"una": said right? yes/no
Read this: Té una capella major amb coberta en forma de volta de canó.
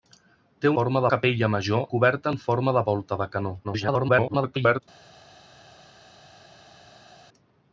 no